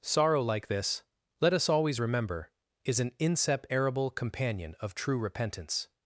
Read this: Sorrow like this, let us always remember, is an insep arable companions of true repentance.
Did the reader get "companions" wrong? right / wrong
wrong